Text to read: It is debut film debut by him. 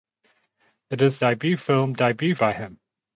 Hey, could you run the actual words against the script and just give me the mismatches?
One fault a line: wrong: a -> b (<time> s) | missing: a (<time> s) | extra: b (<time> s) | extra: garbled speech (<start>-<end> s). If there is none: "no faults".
no faults